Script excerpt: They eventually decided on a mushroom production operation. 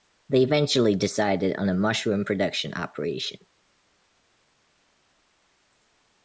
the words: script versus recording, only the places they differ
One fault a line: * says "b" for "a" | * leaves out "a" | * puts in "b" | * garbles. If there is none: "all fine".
all fine